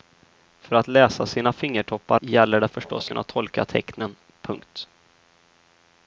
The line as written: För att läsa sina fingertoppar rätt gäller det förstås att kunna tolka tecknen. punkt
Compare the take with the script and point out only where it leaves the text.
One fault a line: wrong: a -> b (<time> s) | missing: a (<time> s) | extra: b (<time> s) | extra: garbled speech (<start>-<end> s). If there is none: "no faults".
missing: rätt (2.2 s)
missing: att (3.1 s)